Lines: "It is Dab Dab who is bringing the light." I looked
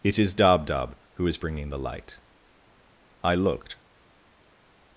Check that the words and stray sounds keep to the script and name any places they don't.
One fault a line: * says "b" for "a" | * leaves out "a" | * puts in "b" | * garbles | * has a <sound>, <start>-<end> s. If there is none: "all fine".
all fine